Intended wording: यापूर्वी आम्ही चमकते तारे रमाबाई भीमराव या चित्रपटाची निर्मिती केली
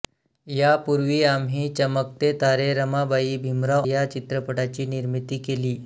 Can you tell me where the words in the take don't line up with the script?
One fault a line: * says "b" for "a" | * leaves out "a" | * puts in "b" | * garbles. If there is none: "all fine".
all fine